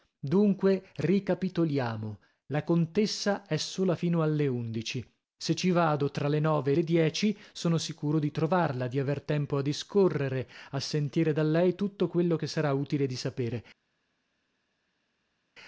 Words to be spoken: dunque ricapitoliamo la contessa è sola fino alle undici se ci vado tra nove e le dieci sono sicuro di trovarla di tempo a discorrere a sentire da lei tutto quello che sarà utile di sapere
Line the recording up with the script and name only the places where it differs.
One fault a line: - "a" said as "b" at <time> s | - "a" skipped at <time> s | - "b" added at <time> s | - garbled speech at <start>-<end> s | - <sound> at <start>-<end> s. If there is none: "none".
- "le" added at 6.3 s
- "aver" added at 9.0 s